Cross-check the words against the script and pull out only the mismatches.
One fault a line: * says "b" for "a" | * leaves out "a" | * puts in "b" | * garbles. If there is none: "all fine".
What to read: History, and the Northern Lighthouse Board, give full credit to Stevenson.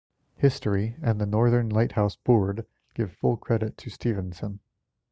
all fine